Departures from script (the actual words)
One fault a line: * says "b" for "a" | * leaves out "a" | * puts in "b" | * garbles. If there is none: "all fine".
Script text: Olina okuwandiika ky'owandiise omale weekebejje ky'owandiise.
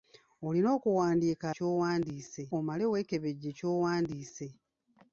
all fine